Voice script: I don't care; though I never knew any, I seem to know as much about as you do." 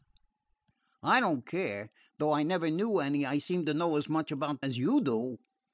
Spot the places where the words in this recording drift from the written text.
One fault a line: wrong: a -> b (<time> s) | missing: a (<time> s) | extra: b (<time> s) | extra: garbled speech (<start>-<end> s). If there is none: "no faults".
no faults